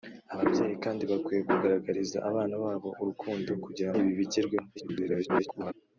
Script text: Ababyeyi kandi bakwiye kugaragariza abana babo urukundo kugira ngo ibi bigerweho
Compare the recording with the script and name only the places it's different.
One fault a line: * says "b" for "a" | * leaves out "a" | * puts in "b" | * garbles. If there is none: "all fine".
* leaves out "ngo"
* garbles